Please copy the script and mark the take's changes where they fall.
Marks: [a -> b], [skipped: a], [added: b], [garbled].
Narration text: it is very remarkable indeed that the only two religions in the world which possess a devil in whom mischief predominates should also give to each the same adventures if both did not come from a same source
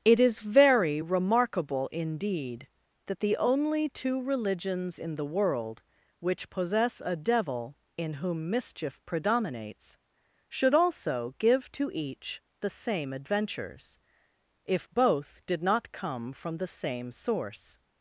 it is very remarkable indeed that the only two religions in the world which possess a devil in whom mischief predominates should also give to each the same adventures if both did not come from [a -> the] same source